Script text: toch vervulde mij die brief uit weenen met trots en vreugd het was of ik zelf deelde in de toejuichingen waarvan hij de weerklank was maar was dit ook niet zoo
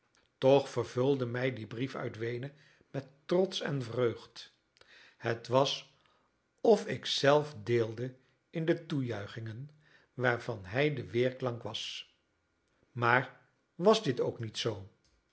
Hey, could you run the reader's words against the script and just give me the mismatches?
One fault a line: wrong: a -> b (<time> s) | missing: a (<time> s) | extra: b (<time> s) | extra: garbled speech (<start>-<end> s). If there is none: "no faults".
no faults